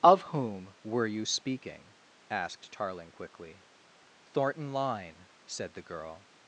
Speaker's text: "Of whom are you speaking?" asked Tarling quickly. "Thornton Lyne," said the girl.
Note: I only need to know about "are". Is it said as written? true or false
false